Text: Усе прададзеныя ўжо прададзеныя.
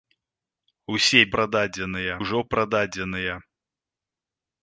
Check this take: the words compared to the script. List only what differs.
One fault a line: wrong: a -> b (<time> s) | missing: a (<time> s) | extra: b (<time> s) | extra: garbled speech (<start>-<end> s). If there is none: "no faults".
no faults